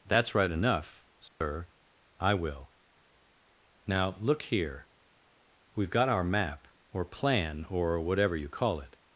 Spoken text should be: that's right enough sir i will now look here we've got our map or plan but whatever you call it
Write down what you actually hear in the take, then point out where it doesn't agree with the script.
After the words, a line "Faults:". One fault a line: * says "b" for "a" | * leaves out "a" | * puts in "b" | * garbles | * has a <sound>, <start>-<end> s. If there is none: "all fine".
that's right enough sir i will now look here we've got our map or plan or whatever you call it
Faults:
* has a dropout, 1.3-1.4 s
* says "or" for "but"